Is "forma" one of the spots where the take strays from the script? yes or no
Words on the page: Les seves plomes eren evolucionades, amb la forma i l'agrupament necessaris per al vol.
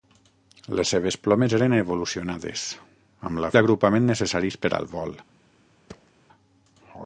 yes